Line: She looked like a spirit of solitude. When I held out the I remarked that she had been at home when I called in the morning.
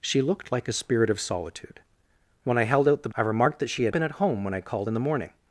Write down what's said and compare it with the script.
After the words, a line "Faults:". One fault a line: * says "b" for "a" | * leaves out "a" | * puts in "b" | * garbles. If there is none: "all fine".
She looked like a spirit of solitude. When I held out the I remarked that she had been at home when I called in the morning.
Faults:
all fine